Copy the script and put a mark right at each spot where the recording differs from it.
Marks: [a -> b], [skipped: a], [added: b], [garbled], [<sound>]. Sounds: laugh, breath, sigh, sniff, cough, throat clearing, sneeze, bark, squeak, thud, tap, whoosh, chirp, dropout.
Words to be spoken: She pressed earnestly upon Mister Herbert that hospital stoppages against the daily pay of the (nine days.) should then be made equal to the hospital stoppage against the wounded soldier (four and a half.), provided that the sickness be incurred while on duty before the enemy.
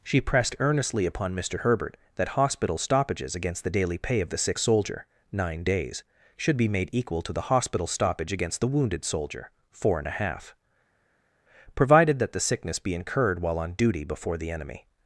She pressed earnestly upon Mister Herbert that hospital stoppages against the daily pay of the [added: sick soldier] (nine days.) should [skipped: then] be made equal to the hospital stoppage against the wounded soldier (four and a half.), provided that the sickness be incurred while on duty before the enemy.